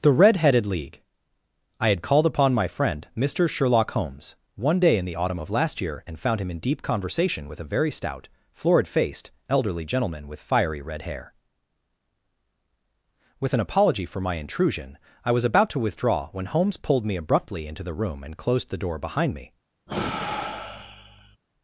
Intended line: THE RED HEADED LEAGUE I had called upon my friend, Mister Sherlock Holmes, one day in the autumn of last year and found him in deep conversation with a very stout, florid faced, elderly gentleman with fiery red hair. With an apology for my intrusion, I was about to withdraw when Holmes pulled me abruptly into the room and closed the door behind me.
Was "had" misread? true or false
false